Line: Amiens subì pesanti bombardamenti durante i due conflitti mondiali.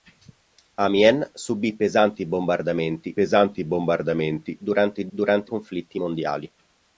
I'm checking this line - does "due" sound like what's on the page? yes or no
no